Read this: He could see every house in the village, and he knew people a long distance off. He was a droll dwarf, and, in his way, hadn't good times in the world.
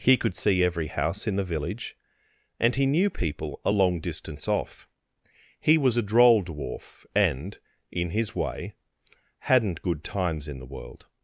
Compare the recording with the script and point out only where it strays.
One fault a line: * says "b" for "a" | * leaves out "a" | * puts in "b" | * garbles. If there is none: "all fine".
all fine